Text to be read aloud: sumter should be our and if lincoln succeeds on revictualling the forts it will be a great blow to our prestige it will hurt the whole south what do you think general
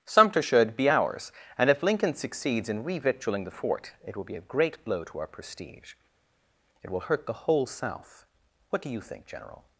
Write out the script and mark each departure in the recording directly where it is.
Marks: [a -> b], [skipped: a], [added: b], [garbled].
sumter should be [our -> ours] and if lincoln succeeds [on -> in] revictualling the [forts -> fort] it will be a great blow to our prestige it will hurt the whole south what do you think general